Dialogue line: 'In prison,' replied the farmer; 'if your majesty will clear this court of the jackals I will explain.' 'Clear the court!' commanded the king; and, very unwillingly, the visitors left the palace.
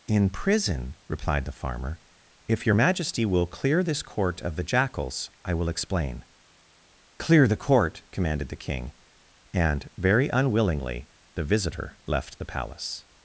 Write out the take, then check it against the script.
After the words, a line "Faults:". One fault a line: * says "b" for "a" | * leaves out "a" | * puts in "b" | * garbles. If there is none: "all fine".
'In prison,' replied the farmer; 'if your majesty will clear this court of the jackals I will explain.' 'Clear the court!' commanded the king; and, very unwillingly, the visitor left the palace.
Faults:
* says "visitor" for "visitors"